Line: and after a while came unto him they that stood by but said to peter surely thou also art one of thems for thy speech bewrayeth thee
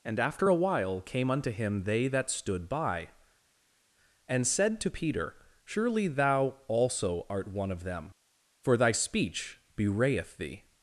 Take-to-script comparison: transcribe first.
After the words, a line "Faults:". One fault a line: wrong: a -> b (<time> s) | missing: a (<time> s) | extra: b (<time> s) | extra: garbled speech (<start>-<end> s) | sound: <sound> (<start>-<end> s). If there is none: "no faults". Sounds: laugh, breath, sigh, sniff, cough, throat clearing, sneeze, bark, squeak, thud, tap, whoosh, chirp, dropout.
and after a while came unto him they that stood by and said to peter surely thou also art one of them for thy speech bewrayeth thee
Faults:
wrong: but -> and (4.3 s)
wrong: thems -> them (7.8 s)